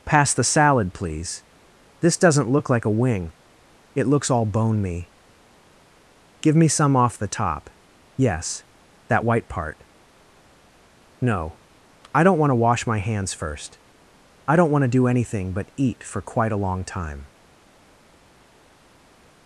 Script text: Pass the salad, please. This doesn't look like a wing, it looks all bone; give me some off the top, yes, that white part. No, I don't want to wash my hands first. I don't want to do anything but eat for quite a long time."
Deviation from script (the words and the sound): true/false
true